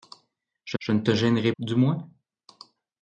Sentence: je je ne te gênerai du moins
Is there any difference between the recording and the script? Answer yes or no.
no